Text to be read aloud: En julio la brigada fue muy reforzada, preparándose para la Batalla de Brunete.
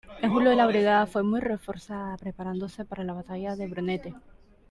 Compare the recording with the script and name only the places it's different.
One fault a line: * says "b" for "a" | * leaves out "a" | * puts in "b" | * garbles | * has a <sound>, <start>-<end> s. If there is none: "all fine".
all fine